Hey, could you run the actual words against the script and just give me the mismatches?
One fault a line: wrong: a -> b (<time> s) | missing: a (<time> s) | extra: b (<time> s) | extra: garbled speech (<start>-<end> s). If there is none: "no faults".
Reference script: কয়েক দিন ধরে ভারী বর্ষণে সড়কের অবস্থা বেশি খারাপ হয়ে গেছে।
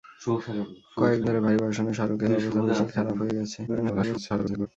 missing: দিন (1.2 s)
extra: garbled speech (3.7-4.7 s)